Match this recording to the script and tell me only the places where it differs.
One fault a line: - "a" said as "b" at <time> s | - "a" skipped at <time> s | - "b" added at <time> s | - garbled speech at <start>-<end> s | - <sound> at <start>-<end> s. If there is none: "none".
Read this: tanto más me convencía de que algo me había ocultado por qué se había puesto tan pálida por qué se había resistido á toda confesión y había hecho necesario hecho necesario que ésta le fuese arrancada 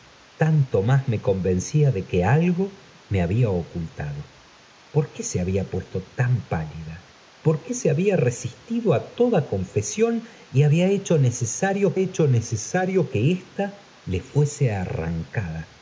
none